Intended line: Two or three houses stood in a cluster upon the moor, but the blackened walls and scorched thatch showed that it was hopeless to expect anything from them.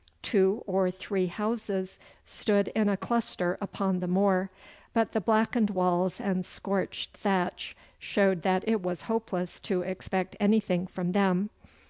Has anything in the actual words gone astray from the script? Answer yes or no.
no